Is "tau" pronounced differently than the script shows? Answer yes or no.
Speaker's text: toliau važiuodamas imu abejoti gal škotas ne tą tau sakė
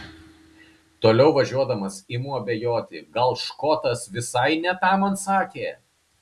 yes